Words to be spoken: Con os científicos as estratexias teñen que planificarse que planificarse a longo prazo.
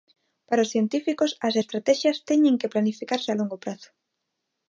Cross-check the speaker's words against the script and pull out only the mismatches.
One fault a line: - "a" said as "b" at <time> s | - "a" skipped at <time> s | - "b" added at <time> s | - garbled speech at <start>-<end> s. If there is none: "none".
- "Con" said as "Para" at 0.5 s
- "que planificarse" skipped at 3.3 s